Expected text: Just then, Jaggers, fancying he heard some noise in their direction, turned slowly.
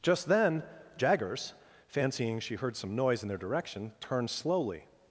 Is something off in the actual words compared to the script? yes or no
yes